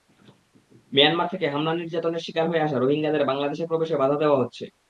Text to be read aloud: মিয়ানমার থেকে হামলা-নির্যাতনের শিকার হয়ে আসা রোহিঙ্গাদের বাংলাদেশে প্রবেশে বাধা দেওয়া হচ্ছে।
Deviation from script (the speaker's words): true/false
false